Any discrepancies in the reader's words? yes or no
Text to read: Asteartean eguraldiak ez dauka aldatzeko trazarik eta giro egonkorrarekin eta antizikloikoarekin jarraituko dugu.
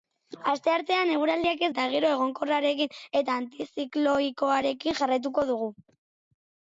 yes